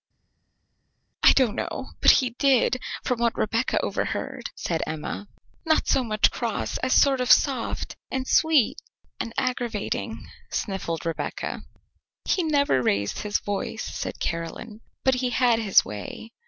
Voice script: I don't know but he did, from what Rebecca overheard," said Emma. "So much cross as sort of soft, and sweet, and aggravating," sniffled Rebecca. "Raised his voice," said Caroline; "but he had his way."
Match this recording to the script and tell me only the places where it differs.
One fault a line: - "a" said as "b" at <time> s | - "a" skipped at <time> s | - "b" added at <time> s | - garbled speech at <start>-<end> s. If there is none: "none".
- "Not" added at 5.7 s
- "He never" added at 12.2 s